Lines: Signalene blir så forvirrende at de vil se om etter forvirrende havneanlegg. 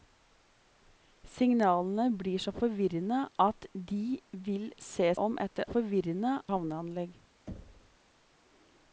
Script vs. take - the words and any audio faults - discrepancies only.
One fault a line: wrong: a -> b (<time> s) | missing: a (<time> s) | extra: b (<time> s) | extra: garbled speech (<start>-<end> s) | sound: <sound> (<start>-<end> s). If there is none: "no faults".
sound: thud (7.5-8.0 s)